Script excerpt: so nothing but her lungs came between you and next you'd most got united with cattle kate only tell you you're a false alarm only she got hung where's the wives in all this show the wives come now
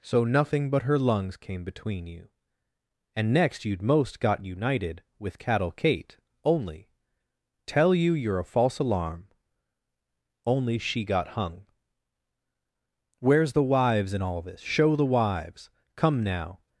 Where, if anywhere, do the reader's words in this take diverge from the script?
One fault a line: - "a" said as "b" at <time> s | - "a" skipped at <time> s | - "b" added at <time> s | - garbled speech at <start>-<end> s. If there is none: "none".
none